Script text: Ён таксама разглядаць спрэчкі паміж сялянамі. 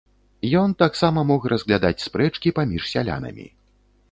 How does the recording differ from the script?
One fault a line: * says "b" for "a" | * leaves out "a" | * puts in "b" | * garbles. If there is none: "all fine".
* puts in "мог"